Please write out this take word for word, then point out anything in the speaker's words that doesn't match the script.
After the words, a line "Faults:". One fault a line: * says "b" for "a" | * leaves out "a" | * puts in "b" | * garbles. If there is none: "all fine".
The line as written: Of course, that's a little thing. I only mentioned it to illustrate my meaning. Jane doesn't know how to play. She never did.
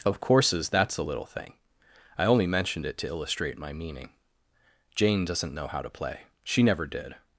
Of courses, that's a little thing. I only mentioned it to illustrate my meaning. Jane doesn't know how to play. She never did.
Faults:
* says "courses" for "course"